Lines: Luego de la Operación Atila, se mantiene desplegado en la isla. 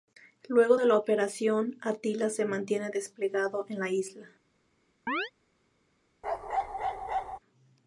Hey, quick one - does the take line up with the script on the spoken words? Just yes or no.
yes